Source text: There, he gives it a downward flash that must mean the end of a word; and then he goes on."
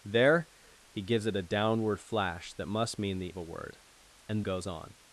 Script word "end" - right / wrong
wrong